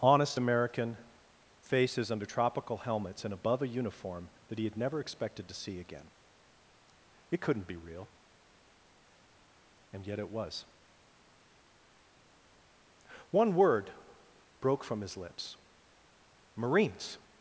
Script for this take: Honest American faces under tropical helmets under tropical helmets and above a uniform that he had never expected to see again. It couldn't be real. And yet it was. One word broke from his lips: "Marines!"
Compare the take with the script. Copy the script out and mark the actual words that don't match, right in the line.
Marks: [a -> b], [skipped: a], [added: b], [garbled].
Honest American faces under tropical helmets [skipped: under tropical helmets] and above a uniform that he had never expected to see again. It couldn't be real. And yet it was. One word broke from his lips: "Marines!"